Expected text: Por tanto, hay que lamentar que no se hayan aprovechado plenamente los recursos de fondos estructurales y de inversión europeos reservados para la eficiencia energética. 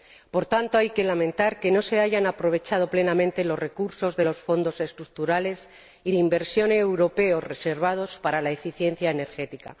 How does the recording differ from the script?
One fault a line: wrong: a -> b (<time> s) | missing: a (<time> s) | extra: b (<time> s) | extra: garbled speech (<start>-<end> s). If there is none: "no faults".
extra: los (4.2 s)